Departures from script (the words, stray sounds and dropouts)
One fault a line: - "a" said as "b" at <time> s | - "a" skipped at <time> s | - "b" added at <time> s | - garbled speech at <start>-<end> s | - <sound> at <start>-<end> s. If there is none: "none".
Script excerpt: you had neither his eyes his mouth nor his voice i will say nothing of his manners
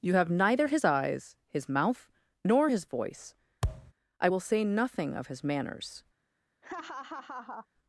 - "had" said as "have" at 0.1 s
- thud at 3.6-3.9 s
- laugh at 6.6-7.7 s